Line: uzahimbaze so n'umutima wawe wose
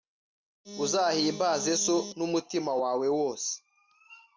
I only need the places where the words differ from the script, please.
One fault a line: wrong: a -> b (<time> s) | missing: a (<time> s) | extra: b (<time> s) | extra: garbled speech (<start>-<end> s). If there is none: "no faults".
no faults